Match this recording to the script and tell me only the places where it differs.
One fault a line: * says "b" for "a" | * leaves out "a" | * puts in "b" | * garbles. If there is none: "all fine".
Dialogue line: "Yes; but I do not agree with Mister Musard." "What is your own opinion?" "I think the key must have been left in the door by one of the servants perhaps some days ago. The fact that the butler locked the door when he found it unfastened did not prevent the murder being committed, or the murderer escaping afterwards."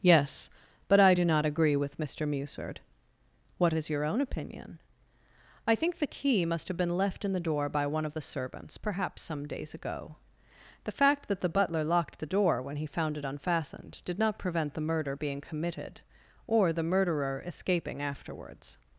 all fine